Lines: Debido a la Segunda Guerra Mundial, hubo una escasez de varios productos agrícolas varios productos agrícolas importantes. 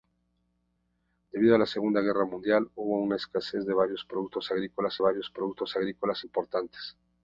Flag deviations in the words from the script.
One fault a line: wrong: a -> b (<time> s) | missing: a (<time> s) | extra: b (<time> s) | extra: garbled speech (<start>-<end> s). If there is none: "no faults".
no faults